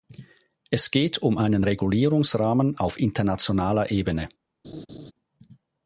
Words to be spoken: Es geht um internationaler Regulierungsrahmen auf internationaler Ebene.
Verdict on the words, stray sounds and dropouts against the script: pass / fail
fail